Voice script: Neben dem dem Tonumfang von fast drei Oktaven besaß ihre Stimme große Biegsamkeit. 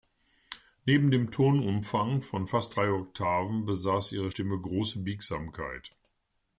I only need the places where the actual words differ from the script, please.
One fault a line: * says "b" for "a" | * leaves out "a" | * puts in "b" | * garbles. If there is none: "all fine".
* leaves out "dem"